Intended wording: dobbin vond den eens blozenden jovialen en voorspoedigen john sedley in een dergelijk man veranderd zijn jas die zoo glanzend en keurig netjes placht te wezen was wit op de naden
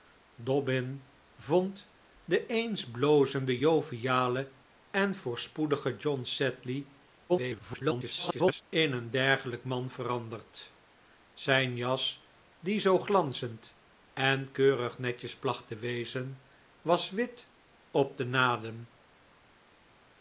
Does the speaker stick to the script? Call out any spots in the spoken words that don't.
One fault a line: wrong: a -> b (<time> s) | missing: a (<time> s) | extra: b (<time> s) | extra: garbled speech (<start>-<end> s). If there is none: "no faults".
extra: garbled speech (7.3-8.6 s)